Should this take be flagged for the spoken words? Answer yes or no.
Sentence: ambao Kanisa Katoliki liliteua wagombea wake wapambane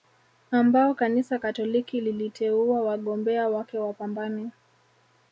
no